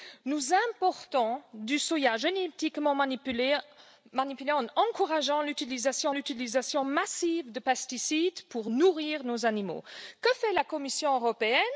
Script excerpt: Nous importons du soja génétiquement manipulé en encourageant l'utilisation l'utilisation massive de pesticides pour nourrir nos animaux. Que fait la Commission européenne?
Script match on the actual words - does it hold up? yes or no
yes